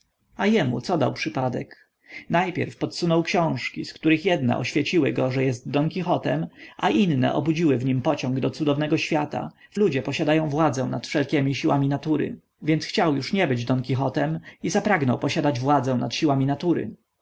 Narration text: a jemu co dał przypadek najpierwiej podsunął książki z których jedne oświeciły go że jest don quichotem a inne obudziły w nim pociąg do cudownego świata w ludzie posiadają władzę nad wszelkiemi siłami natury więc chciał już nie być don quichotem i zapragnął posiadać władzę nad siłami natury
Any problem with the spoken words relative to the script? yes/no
no